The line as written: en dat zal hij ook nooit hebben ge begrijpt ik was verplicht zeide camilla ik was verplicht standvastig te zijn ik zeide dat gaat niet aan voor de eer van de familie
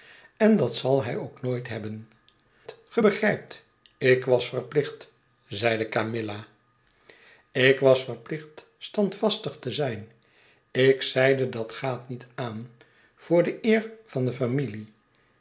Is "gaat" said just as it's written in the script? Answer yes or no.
yes